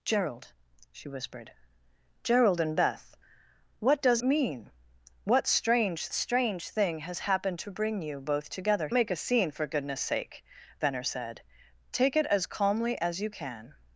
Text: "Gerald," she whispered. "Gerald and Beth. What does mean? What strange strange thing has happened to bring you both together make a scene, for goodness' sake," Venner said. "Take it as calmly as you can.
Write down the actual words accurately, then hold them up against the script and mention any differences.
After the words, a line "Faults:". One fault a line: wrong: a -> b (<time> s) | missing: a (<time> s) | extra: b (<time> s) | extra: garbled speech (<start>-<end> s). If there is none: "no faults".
"Gerald," she whispered. "Gerald and Beth. What does mean? What strange strange thing has happened to bring you both together make a scene, for goodness' sake," Venner said. "Take it as calmly as you can.
Faults:
no faults